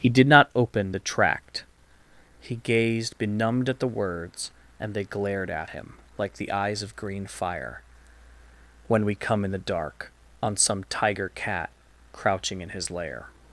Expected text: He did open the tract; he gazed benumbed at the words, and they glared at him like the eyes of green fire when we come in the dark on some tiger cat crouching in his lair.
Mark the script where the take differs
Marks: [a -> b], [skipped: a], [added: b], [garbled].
He did [added: not] open the tract; he gazed benumbed at the words, and they glared at him like the eyes of green fire when we come in the dark on some tiger cat crouching in his lair.